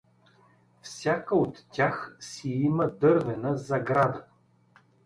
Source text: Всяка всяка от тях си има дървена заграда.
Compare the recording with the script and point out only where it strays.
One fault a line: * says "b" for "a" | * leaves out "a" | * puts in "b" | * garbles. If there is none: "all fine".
* leaves out "всяка"